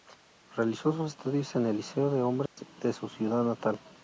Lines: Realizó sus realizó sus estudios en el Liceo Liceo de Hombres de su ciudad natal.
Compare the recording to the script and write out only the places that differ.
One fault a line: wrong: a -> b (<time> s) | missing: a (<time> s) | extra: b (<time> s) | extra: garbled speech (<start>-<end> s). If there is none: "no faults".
missing: realizó sus (1.1 s)
missing: Liceo (2.1 s)